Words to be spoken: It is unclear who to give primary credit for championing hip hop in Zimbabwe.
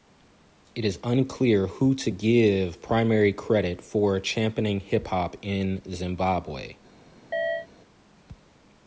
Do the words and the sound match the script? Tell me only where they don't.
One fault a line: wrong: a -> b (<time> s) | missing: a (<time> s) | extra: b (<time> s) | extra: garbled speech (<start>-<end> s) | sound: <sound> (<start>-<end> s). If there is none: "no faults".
sound: chirp (7.3-7.7 s)